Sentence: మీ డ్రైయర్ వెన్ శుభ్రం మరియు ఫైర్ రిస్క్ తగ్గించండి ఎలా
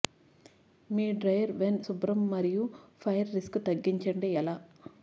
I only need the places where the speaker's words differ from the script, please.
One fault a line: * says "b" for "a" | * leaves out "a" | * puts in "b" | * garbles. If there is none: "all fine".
all fine